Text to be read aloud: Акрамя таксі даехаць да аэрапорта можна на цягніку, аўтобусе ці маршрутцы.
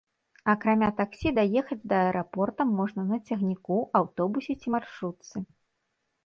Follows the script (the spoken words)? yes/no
yes